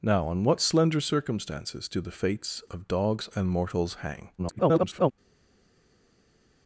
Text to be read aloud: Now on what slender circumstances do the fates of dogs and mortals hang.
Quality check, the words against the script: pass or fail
fail